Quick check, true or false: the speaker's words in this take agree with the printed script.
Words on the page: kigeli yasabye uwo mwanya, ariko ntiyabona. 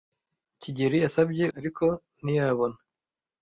false